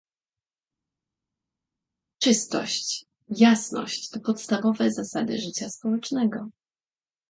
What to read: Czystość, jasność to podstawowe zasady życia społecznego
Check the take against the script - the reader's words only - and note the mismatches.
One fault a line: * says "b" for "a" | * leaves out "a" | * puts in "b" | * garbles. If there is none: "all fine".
all fine